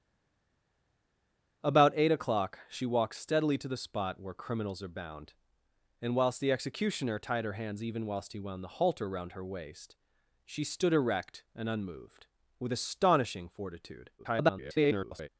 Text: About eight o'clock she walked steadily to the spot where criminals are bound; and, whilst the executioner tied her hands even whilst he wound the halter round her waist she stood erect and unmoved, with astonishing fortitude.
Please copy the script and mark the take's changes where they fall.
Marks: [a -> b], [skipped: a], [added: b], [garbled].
About eight o'clock she walked steadily to the spot where criminals are bound; and, whilst the executioner tied her hands even whilst he wound the halter round her waist she stood erect and unmoved, with astonishing fortitude. [garbled]